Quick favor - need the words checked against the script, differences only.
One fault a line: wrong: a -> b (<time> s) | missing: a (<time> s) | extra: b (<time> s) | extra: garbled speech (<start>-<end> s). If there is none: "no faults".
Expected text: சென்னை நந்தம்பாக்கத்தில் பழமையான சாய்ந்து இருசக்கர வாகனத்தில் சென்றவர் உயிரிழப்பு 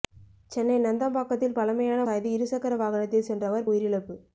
no faults